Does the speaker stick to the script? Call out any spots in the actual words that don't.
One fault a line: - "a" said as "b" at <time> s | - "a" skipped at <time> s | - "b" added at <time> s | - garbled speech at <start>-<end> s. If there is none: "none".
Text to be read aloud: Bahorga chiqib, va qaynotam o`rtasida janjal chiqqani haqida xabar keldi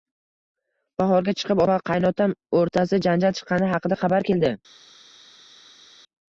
none